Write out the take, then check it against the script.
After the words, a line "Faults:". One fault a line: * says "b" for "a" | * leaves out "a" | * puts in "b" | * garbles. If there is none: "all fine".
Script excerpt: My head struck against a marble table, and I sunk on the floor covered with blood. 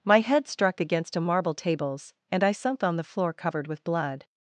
My head struck against a marble tables, and I sunk on the floor covered with blood.
Faults:
* says "tables" for "table"